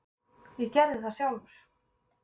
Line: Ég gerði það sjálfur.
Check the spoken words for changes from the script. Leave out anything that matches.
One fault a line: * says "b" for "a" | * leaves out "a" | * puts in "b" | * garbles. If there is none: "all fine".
all fine